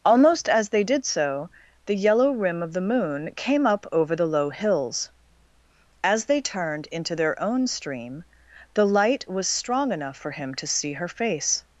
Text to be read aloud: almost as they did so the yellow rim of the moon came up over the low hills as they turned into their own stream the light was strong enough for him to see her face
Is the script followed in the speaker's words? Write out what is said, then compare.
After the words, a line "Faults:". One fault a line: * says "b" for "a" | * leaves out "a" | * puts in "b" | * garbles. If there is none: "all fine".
almost as they did so the yellow rim of the moon came up over the low hills as they turned into their own stream the light was strong enough for him to see her face
Faults:
all fine